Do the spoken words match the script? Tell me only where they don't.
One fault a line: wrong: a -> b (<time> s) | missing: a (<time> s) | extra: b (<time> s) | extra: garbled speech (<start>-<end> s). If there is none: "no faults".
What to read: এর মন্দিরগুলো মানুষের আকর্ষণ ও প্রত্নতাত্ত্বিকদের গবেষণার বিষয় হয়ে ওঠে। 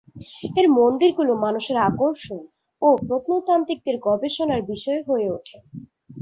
no faults